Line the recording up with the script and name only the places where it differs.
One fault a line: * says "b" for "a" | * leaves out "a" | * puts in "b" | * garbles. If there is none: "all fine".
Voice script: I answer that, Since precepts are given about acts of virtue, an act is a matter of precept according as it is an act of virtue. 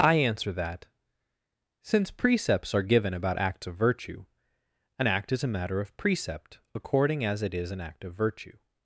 all fine